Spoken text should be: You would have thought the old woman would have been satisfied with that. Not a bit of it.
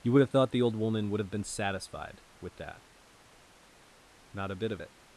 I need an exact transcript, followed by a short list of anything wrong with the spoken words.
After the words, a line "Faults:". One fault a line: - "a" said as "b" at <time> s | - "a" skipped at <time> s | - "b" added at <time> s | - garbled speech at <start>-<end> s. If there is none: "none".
You would have thought the old woman would have been satisfied with that. Not a bit of it.
Faults:
none